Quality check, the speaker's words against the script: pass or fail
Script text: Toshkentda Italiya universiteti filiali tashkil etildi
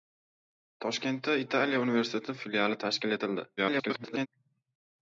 fail